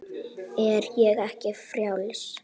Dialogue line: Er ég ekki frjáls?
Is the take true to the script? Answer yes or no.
yes